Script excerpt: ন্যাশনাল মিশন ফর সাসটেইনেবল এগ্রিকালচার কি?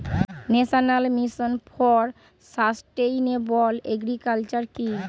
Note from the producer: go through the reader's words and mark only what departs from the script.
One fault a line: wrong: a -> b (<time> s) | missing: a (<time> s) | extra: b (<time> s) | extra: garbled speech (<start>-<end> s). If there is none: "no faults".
no faults